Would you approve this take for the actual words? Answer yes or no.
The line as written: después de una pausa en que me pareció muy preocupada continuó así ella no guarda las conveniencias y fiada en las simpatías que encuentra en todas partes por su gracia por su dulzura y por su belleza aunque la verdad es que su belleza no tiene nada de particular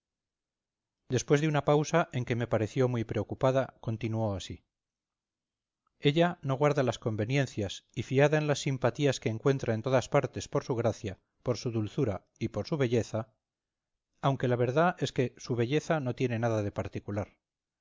yes